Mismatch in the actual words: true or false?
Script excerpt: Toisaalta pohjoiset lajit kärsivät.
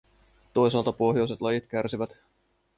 false